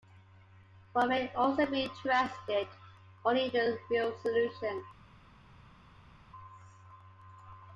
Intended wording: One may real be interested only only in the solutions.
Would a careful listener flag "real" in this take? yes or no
yes